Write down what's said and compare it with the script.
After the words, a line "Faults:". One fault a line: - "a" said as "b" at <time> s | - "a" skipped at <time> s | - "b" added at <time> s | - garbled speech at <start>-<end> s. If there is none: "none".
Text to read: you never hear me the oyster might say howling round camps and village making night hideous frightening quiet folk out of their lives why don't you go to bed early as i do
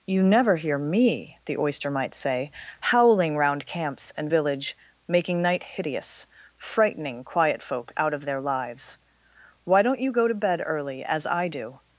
you never hear me the oyster might say howling round camps and village making night hideous frightening quiet folk out of their lives why don't you go to bed early as i do
Faults:
none